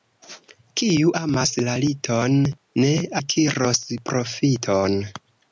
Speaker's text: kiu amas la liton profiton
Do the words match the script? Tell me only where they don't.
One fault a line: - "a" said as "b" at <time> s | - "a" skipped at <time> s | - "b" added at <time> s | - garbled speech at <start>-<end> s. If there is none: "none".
- "ne akiros" added at 2.9 s